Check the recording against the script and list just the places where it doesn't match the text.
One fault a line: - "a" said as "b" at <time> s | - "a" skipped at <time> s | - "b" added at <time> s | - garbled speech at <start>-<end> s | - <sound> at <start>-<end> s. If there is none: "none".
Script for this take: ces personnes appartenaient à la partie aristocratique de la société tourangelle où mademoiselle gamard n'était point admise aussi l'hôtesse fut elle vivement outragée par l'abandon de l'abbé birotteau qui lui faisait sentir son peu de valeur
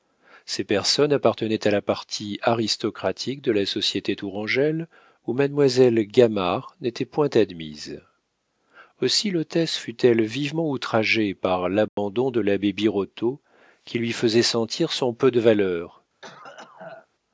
- dropout at 11.9-12.0 s
- cough at 16.2-17.1 s